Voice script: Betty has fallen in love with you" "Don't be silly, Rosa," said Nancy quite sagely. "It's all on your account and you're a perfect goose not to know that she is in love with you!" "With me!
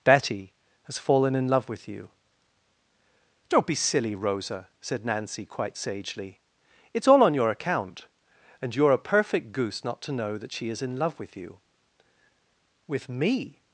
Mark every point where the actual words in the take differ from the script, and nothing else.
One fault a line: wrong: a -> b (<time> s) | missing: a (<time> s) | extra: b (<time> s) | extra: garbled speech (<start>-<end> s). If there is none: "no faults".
no faults